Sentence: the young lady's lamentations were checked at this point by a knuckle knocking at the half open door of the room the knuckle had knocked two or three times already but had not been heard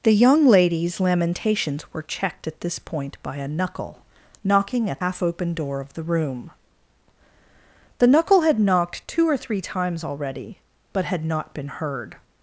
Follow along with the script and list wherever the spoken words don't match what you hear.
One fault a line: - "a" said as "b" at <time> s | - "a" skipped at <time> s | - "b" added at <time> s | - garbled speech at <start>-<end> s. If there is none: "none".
- "the" skipped at 5.0 s